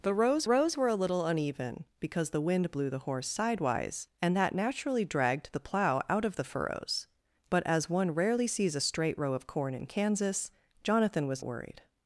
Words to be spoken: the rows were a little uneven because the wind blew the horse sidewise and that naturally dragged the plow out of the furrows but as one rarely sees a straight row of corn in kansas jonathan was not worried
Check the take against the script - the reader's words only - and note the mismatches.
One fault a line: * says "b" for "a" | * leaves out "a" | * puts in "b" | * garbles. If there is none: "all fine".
* puts in "rows"
* leaves out "not"